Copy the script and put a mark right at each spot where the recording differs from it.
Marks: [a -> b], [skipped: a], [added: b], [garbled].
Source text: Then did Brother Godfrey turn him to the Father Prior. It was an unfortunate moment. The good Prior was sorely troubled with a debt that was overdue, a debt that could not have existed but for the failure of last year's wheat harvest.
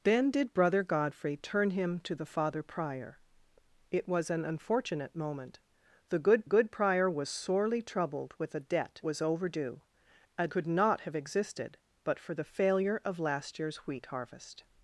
Then did Brother Godfrey turn him to the Father Prior. It was an unfortunate moment. The good [added: good] Prior was sorely troubled with a debt [skipped: that] was overdue, a [skipped: debt that] could not have existed but for the failure of last year's wheat harvest.